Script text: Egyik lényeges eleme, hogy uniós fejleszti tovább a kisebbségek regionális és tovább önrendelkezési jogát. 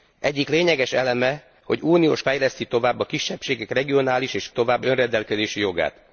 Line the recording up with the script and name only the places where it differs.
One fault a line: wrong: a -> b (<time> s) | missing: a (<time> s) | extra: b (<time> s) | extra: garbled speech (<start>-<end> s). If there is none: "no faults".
no faults